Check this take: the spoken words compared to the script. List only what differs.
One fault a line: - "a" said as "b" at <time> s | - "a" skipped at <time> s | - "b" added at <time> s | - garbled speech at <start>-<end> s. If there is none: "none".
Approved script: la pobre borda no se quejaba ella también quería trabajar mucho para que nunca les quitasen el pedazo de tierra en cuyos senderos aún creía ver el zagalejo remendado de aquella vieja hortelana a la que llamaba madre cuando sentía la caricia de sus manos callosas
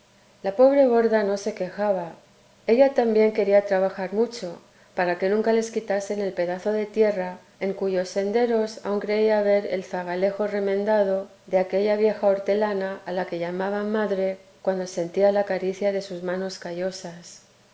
none